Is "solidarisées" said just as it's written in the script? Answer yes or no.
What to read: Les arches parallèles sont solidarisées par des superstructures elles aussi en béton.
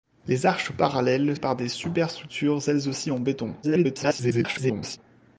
no